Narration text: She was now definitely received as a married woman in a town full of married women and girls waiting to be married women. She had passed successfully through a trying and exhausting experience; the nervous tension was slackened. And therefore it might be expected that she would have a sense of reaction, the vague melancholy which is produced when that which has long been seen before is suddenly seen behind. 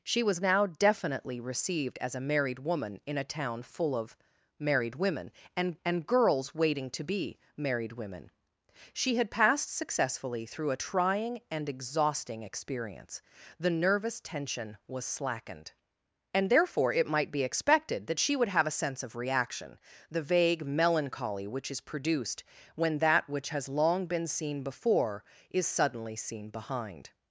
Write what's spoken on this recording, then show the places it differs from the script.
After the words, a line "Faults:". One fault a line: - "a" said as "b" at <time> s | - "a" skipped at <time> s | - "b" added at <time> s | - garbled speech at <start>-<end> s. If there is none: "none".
She was now definitely received as a married woman in a town full of married women and and girls waiting to be married women. She had passed successfully through a trying and exhausting experience; the nervous tension was slackened. And therefore it might be expected that she would have a sense of reaction, the vague melancholy which is produced when that which has long been seen before is suddenly seen behind.
Faults:
- "and" added at 5.8 s